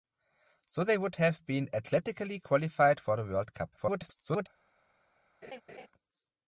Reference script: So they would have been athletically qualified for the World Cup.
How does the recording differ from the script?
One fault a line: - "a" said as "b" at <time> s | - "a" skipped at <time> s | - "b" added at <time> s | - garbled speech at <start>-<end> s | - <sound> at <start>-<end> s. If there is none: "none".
- garbled speech at 3.8-4.5 s
- laugh at 5.4-5.9 s